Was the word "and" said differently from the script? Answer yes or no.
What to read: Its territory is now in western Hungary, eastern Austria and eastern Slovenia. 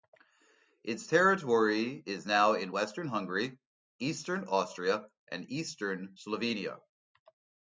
no